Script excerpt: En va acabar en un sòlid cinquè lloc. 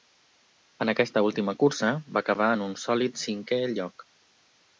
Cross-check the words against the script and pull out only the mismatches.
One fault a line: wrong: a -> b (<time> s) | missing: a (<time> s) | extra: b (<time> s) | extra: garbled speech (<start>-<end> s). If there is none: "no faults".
extra: aquesta última cursa (0.9 s)